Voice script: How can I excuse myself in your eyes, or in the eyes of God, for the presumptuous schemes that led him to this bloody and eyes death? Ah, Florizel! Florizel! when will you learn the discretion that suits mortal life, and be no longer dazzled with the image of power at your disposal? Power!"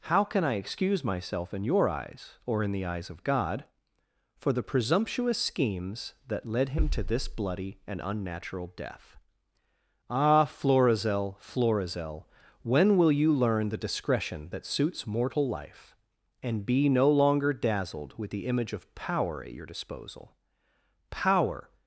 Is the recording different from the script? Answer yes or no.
yes